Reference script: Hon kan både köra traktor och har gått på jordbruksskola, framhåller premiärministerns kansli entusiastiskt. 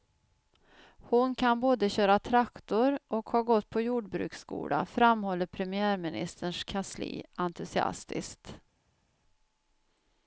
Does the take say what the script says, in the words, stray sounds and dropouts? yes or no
yes